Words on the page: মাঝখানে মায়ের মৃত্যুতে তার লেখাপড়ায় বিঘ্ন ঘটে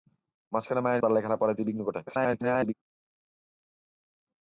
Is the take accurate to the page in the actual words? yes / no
no